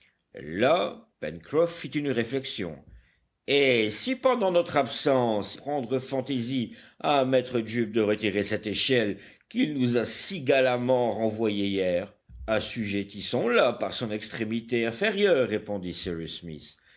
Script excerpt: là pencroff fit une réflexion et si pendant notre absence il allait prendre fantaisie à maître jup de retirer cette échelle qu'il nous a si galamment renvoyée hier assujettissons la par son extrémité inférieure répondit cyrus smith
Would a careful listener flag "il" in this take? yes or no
yes